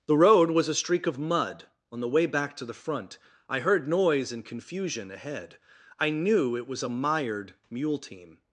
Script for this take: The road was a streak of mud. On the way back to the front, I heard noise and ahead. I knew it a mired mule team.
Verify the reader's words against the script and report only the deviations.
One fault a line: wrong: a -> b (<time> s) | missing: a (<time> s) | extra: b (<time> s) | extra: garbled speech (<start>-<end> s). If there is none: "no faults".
extra: confusion (4.4 s)
extra: was (6.7 s)